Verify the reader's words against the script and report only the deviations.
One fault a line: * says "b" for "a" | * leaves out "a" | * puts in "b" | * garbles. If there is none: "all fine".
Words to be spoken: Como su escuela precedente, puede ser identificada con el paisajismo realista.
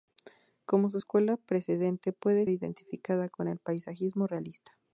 * leaves out "ser"